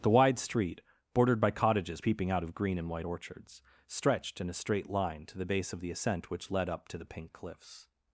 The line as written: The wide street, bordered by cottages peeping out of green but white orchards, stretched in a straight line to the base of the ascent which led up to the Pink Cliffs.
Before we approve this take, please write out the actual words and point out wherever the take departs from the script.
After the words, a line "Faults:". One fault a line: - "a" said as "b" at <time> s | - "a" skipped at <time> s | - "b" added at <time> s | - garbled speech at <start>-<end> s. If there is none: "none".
The wide street, bordered by cottages peeping out of green and white orchards, stretched in a straight line to the base of the ascent which led up to the Pink Cliffs.
Faults:
- "but" said as "and" at 2.8 s